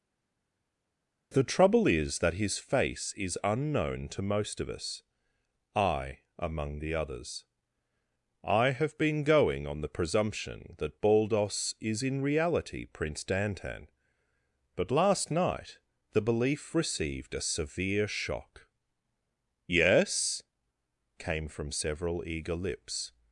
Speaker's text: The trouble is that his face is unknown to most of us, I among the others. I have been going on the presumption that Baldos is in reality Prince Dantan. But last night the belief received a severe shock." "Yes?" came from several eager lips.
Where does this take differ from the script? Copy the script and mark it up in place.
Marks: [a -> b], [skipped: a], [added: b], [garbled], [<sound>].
The trouble is that his face is unknown to most of us, I among the others. I have been going on the presumption that Baldos is in reality Prince Dantan. But last night the belief received a severe shock." "Yes?" came from several eager lips.